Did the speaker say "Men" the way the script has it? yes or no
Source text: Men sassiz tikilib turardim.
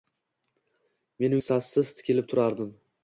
yes